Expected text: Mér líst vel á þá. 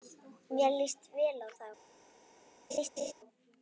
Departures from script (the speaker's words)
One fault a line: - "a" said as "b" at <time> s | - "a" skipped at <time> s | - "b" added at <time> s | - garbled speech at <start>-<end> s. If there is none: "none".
none